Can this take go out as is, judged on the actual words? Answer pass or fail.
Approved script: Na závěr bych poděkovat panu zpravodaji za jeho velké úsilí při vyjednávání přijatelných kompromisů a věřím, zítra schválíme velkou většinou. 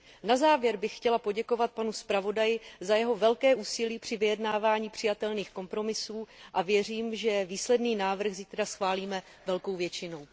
fail